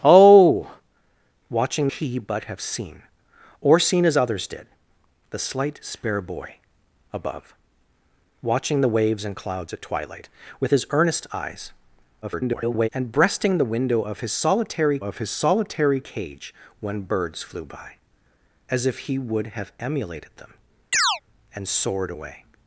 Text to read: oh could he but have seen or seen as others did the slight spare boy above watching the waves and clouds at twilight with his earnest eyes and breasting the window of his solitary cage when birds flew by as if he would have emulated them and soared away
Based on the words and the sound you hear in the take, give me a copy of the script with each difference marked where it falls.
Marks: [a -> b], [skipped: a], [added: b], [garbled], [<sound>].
oh [could -> watching] he but have seen or seen as others did the slight spare boy above watching the waves and clouds at twilight with his earnest eyes [garbled] and breasting the window of his solitary [added: of his solitary] cage when birds flew by as if he would have emulated them [chirp] and soared away